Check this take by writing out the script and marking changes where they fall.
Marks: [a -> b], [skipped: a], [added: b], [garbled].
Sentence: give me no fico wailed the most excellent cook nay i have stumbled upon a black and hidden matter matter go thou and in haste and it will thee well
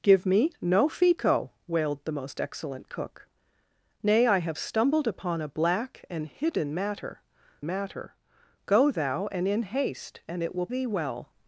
give me no fico wailed the most excellent cook nay i have stumbled upon a black and hidden matter matter go thou and in haste and it will thee well